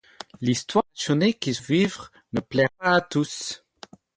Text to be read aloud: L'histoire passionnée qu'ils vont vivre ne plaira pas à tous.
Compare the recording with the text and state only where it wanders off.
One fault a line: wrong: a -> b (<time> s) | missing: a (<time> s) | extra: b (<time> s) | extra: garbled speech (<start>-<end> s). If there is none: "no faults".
missing: vont (1.6 s)